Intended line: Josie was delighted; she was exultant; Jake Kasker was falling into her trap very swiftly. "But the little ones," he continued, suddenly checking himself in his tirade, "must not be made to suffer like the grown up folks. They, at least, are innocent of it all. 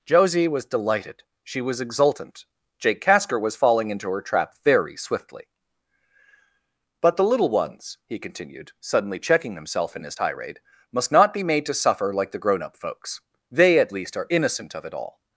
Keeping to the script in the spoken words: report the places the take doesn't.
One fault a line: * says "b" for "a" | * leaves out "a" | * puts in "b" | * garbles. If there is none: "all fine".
all fine